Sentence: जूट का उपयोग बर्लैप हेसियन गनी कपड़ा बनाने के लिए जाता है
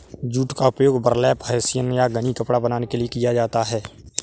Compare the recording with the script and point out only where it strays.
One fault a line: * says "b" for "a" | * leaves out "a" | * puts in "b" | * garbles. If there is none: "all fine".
* puts in "या"
* puts in "किया"